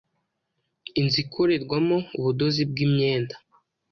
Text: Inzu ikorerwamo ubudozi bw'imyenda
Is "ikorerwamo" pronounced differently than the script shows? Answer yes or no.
no